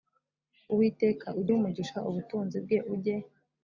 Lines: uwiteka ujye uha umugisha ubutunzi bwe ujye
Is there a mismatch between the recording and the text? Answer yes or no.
no